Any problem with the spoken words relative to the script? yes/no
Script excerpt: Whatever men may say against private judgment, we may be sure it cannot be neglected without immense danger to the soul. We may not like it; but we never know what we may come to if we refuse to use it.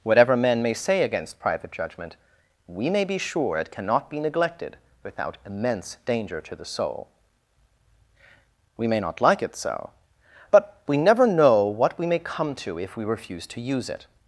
yes